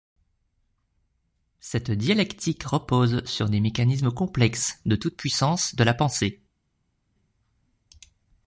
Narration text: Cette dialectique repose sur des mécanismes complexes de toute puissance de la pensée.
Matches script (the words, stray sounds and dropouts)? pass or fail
pass